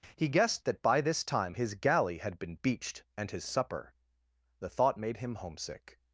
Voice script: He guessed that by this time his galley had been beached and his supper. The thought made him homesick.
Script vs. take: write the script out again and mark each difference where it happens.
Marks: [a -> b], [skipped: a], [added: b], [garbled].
He guessed that by this time his galley had been beached and his supper. The thought made him homesick.